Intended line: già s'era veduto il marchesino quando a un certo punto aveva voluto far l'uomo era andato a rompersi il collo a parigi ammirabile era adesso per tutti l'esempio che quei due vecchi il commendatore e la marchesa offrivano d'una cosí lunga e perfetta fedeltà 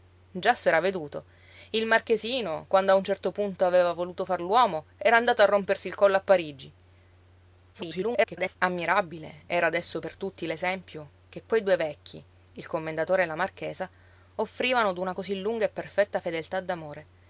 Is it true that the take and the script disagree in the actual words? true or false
true